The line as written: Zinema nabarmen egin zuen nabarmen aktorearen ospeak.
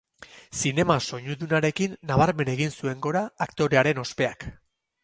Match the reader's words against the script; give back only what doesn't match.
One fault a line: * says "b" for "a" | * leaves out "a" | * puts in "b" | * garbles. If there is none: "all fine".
* puts in "soinudunarekin"
* says "gora" for "nabarmen"